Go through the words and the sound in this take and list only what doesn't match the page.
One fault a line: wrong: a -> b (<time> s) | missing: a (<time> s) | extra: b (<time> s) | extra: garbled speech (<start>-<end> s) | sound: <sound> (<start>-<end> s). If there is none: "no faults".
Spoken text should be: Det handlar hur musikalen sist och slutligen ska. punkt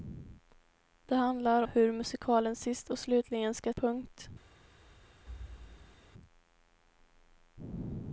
sound: thud (5.3-6.1 s)